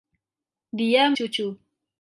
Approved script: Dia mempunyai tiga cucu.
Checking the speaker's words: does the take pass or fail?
fail